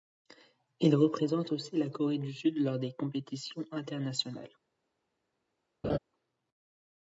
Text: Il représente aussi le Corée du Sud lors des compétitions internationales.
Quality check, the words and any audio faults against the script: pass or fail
fail